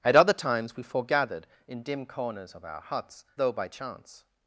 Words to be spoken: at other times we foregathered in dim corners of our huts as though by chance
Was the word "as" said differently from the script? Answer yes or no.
yes